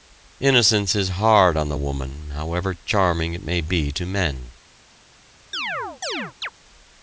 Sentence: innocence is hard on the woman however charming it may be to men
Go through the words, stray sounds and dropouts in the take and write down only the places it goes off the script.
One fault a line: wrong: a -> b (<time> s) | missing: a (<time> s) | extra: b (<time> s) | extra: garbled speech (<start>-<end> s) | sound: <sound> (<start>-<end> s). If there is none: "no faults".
sound: chirp (5.5-6.5 s)